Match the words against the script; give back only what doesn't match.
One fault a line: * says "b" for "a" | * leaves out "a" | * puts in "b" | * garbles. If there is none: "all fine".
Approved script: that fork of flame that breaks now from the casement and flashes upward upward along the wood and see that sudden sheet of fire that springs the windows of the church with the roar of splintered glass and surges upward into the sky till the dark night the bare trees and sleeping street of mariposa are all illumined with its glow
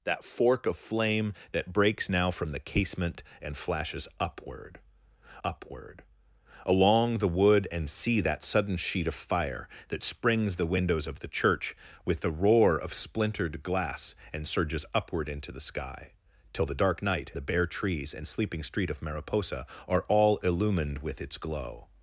all fine